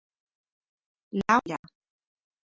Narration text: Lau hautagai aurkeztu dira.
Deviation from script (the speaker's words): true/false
true